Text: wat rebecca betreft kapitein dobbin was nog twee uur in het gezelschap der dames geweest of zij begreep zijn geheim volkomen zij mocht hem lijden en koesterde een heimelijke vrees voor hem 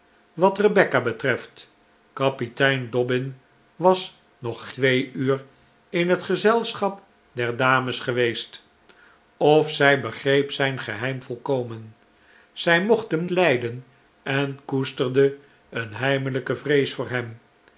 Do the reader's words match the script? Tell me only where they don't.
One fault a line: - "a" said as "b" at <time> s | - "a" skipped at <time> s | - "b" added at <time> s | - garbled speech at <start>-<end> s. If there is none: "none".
none